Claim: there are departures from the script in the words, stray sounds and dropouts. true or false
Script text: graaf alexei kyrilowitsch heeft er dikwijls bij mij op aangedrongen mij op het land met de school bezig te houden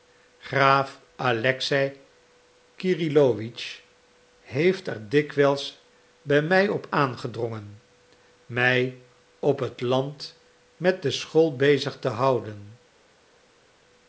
false